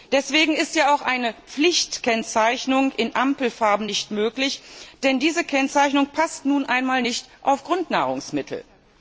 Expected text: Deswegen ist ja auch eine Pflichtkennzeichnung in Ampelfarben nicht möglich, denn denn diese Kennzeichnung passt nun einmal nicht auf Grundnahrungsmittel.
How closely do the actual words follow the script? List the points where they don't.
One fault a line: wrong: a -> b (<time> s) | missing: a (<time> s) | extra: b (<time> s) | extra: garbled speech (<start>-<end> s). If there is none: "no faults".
missing: denn (5.2 s)